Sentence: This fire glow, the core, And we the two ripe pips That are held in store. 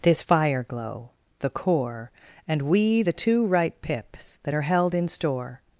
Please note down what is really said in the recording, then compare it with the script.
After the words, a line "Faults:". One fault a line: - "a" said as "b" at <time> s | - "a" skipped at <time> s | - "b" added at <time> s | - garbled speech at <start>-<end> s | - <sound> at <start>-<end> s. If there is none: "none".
This fire glow, the core, And we the two ripe pips That are held in store.
Faults:
none